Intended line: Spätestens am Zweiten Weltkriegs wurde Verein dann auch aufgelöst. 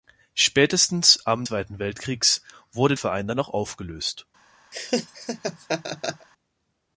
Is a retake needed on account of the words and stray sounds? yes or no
yes